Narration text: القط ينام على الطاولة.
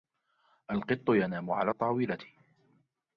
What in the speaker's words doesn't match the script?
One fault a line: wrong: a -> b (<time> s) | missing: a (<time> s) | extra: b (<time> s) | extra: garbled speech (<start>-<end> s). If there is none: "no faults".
no faults